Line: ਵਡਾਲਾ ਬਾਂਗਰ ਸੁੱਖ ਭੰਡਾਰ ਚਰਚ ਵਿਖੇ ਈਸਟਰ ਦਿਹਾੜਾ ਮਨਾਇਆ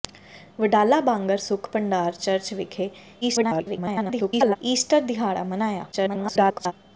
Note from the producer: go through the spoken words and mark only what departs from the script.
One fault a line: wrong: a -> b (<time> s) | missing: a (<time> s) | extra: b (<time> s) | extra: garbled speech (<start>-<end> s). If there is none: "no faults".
extra: garbled speech (3.2-4.6 s)
extra: garbled speech (5.9-6.7 s)